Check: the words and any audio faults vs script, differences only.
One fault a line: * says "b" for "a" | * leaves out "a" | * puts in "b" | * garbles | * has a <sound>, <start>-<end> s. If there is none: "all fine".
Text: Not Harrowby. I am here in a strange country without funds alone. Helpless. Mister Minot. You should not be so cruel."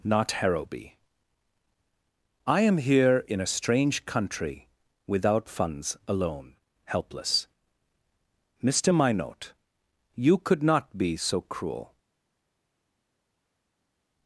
* says "could" for "should"